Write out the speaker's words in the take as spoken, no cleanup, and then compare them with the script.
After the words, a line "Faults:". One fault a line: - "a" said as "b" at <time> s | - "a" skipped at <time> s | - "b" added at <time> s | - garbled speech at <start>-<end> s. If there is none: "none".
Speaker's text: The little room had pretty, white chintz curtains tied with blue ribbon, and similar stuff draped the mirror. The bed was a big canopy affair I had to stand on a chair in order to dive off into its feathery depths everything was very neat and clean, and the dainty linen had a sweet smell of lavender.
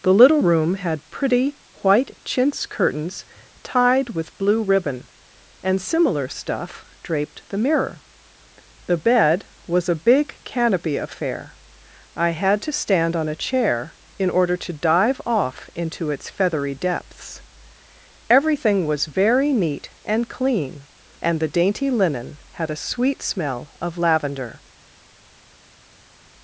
The little room had pretty, white chintz curtains tied with blue ribbon, and similar stuff draped the mirror. The bed was a big canopy affair I had to stand on a chair in order to dive off into its feathery depths everything was very neat and clean, and the dainty linen had a sweet smell of lavender.
Faults:
none